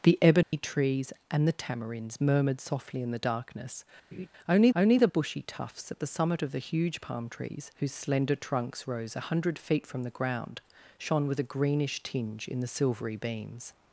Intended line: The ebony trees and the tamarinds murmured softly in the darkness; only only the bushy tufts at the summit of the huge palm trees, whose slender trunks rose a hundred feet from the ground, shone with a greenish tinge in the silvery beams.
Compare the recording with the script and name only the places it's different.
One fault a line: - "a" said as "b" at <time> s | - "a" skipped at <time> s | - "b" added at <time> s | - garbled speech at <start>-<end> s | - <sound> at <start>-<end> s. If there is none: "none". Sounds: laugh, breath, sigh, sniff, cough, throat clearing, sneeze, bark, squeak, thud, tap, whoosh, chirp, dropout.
- dropout at 0.4-0.5 s
- laugh at 4.1-4.3 s